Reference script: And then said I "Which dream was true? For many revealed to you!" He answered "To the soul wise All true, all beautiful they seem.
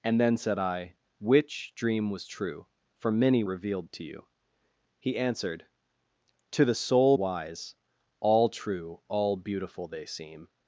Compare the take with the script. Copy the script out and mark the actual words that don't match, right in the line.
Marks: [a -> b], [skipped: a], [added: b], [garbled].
And then said I "Which dream was true? For many revealed to you!" He answered "To the soul wise All true, all beautiful they seem.